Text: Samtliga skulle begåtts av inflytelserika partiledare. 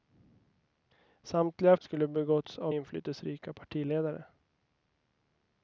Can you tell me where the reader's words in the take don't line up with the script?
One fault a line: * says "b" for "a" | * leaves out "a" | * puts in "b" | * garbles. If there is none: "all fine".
all fine